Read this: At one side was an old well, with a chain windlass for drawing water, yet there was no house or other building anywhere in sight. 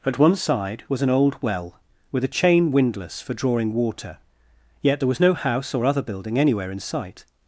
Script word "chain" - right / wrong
right